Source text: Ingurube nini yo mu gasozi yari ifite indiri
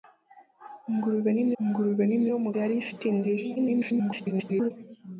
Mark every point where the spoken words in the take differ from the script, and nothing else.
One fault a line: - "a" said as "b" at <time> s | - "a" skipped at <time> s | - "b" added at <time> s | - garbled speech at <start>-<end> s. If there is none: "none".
- "ingurube nini" added at 1.6 s
- "gasozi" skipped at 2.5 s
- garbled speech at 3.6-4.7 s